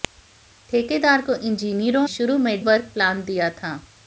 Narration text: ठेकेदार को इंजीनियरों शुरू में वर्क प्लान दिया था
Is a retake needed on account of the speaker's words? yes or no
no